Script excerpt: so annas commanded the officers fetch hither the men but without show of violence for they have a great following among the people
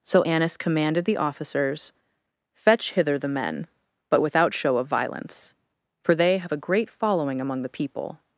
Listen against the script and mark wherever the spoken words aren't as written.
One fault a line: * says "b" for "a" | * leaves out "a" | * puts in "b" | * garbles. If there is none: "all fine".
all fine